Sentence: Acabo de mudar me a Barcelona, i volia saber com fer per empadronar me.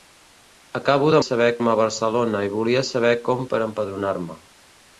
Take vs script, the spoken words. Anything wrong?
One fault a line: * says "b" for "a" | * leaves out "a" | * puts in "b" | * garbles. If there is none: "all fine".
* says "saber" for "mudar"
* leaves out "fer"